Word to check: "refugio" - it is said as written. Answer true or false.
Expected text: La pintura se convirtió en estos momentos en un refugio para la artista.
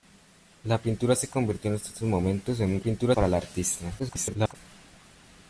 false